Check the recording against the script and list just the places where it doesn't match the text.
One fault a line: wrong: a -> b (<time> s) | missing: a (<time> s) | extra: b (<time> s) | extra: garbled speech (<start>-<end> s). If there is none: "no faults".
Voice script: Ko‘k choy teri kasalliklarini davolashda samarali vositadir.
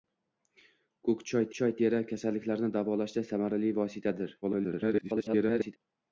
extra: choy (1.6 s)
extra: garbled speech (4.4-5.8 s)